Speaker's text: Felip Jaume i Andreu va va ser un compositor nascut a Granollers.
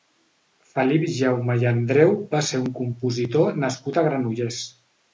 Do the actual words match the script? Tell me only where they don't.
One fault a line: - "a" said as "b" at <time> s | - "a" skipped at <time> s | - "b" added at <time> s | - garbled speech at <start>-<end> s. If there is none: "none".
- "va" skipped at 2.4 s